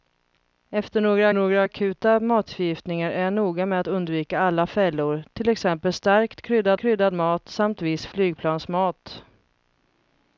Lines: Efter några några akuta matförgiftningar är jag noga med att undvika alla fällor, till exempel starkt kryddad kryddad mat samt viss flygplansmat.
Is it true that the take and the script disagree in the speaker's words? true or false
false